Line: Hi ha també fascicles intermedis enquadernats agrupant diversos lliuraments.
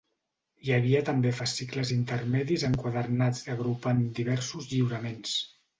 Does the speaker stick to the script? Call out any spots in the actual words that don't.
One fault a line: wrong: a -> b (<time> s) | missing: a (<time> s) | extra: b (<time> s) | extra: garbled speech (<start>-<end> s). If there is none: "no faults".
wrong: ha -> havia (0.8 s)